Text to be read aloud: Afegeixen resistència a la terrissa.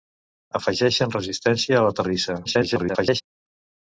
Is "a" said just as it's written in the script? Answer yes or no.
yes